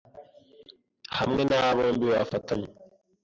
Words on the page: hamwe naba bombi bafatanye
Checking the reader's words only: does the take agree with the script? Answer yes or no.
yes